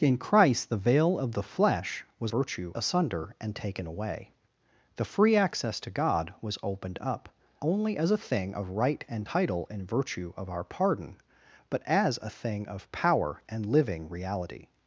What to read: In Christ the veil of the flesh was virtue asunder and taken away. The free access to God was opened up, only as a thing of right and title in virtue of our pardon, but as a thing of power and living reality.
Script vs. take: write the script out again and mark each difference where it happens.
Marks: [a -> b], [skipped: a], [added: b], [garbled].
In Christ the veil of the flesh was virtue asunder and taken away. The free access to God was opened up, only as a thing of right and title in virtue of our pardon, but as a thing of power and living reality.